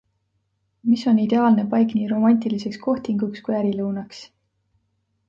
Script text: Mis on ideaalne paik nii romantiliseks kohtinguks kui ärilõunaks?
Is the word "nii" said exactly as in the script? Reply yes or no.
yes